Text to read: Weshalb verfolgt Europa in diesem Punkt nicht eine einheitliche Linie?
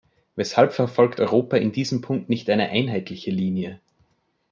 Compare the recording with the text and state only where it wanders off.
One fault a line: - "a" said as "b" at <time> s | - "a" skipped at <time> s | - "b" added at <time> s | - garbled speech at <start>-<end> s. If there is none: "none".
none